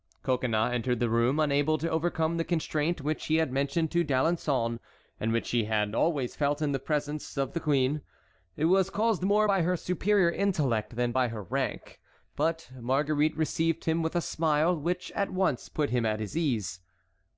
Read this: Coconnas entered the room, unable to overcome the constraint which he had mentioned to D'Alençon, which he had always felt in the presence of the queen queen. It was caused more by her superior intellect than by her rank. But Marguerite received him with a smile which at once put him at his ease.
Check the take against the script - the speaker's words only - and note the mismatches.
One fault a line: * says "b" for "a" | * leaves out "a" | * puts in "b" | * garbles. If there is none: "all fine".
* puts in "and"
* leaves out "queen"